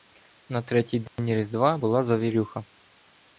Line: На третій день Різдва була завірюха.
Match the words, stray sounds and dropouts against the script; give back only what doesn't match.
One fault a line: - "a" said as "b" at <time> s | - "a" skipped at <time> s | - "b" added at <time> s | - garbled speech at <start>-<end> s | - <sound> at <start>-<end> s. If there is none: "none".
- dropout at 1.1-1.2 s